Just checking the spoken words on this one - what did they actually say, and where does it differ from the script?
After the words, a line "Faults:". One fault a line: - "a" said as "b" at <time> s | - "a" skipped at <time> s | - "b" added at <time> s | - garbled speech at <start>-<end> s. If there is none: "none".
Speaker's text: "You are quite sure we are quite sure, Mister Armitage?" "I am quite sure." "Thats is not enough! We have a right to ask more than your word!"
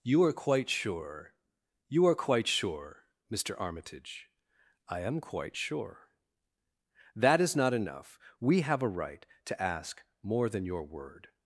"You are quite sure you are quite sure, Mister Armitage?" "I am quite sure." "That is not enough! We have a right to ask more than your word!"
Faults:
- "we" said as "you" at 1.9 s
- "Thats" said as "That" at 7.2 s